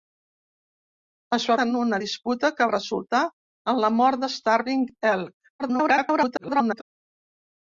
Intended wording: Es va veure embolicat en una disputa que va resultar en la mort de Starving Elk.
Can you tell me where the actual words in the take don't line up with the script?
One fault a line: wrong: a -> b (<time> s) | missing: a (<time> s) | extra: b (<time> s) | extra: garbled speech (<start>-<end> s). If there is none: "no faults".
missing: veure embolicat (1.6 s)
missing: va (2.7 s)
extra: garbled speech (5.6-6.8 s)